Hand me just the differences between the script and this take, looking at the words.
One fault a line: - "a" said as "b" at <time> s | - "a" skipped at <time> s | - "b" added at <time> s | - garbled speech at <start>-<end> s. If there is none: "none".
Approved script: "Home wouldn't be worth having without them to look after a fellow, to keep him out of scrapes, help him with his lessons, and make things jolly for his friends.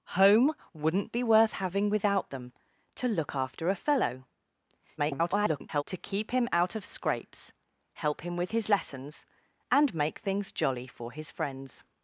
- garbled speech at 5.0-5.8 s